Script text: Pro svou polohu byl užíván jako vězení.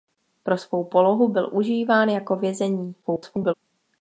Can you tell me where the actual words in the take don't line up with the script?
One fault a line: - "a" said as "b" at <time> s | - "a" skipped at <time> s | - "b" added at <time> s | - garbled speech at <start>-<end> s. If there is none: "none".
- garbled speech at 3.0-3.5 s